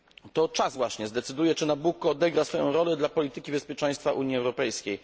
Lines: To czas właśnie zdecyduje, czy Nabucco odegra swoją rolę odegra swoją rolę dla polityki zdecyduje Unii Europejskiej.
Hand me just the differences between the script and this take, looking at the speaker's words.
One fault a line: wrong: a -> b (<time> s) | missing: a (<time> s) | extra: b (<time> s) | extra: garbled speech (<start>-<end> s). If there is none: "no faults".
missing: odegra swoją rolę (3.0 s)
wrong: zdecyduje -> bezpieczeństwa (3.5 s)